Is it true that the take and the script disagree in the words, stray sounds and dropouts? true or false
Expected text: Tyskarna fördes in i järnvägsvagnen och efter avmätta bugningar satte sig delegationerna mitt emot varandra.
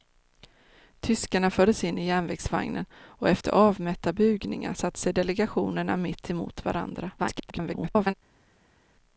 true